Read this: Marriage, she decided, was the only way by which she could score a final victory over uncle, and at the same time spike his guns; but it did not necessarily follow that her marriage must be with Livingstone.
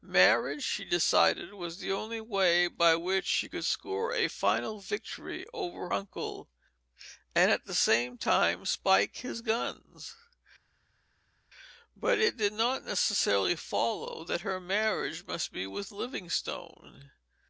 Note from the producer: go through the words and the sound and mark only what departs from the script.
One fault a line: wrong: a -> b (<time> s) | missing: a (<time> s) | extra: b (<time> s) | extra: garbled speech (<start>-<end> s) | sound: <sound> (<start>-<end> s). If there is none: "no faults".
no faults